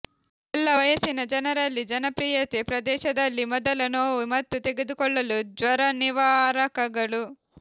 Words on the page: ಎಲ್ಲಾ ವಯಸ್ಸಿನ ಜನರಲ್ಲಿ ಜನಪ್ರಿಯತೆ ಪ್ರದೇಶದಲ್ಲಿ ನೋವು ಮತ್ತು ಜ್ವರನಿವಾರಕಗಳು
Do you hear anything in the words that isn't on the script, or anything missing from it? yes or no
yes